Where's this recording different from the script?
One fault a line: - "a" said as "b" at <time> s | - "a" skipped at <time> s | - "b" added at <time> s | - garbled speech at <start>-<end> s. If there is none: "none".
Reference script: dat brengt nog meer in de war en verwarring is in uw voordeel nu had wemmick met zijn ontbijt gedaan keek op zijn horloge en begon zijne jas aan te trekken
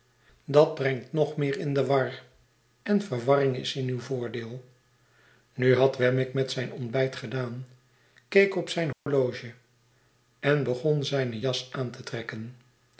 none